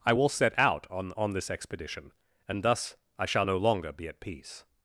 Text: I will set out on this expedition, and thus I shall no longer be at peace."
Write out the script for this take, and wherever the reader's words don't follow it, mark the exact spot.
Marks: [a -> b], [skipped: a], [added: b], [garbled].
I will set out on [added: on] this expedition, and thus I shall no longer be at peace."